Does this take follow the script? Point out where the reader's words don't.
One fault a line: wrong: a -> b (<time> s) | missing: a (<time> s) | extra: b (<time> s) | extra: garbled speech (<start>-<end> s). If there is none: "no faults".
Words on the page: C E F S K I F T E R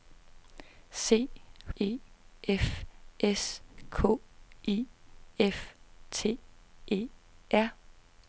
no faults